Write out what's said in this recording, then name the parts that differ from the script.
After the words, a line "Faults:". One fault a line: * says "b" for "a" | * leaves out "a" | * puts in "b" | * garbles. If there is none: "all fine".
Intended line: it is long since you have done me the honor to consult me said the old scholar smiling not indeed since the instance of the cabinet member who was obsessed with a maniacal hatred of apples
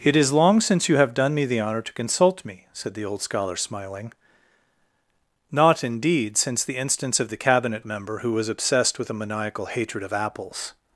it is long since you have done me the honor to consult me said the old scholar smiling not indeed since the instance of the cabinet member who was obsessed with a maniacal hatred of apples
Faults:
all fine